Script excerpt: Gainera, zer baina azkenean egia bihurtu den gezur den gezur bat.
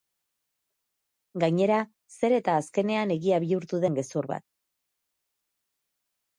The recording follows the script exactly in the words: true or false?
false